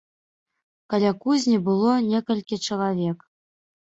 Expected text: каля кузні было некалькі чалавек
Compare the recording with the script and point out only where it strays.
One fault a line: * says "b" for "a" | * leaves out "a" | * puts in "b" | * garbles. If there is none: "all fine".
all fine